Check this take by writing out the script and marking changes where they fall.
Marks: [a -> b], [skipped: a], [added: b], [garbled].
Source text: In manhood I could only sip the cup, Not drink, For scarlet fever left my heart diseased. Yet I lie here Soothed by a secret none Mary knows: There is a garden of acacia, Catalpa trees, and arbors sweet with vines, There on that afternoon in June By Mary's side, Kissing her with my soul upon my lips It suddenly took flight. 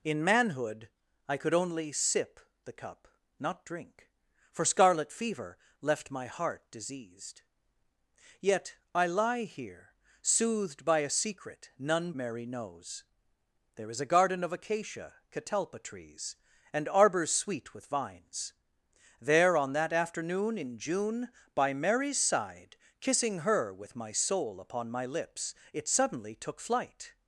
In manhood I could only sip the cup, Not drink, For scarlet fever left my heart diseased. Yet I lie here Soothed by a secret none Mary knows: There is a garden of acacia, Catalpa trees, and arbors sweet with vines, There on that afternoon in June By Mary's side, Kissing her with my soul upon my lips It suddenly took flight.